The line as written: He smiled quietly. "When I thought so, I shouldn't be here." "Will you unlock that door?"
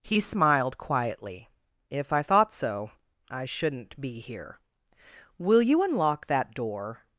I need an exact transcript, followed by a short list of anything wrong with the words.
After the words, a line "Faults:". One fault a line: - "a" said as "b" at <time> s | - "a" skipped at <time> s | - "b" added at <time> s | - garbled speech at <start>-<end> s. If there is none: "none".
He smiled quietly. "If I thought so, I shouldn't be here." "Will you unlock that door?"
Faults:
- "When" said as "If" at 1.9 s